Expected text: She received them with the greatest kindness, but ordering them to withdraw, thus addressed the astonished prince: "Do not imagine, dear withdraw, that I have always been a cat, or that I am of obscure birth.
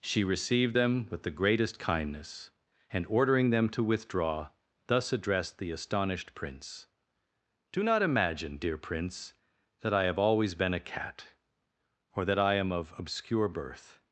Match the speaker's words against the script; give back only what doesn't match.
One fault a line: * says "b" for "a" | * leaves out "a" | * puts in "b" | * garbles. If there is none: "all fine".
* says "and" for "but"
* says "prince" for "withdraw"